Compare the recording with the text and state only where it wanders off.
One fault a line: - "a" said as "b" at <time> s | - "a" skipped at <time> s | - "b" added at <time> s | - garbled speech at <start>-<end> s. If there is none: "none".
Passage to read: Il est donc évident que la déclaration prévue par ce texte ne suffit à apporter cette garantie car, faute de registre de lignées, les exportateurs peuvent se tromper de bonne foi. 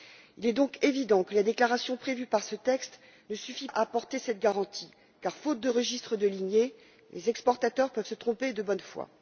none